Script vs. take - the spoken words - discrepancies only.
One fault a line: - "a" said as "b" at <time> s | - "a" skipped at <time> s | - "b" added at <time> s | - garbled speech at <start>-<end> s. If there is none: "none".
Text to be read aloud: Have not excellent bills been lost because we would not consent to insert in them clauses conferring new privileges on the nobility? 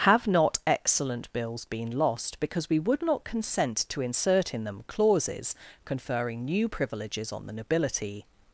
none